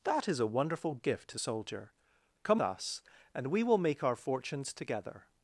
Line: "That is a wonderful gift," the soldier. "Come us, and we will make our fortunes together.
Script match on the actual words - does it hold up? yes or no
yes